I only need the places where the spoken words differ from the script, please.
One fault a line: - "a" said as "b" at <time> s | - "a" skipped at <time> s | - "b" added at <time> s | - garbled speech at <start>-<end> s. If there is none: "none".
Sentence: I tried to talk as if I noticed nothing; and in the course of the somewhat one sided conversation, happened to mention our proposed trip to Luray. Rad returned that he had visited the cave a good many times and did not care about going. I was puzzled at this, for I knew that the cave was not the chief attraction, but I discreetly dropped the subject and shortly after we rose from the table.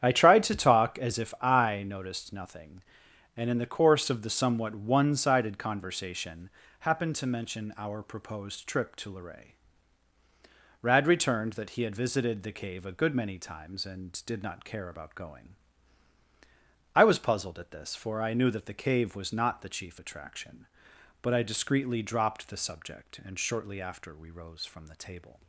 none